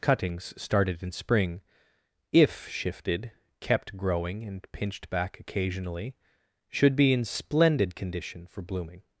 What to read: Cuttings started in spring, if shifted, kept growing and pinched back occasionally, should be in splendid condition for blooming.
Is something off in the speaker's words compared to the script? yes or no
no